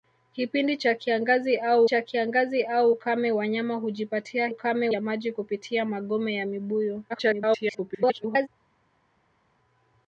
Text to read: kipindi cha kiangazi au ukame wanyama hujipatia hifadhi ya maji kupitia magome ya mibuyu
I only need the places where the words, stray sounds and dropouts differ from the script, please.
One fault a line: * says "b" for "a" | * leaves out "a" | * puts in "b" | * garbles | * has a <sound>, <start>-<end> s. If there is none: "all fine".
* puts in "cha kiangazi au"
* says "ukame" for "hifadhi"
* garbles